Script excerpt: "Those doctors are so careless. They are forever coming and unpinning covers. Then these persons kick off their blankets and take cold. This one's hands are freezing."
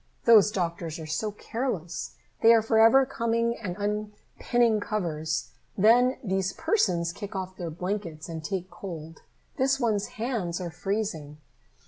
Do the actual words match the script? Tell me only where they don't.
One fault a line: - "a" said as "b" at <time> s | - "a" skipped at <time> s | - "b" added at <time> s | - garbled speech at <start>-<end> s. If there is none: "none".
none